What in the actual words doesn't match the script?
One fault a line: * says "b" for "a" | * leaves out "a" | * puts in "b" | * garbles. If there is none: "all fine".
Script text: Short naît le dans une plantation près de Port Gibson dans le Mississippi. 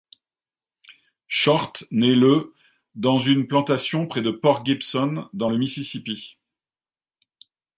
all fine